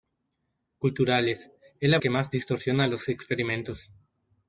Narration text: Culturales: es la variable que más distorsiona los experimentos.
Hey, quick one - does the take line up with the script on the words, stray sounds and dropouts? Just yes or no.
no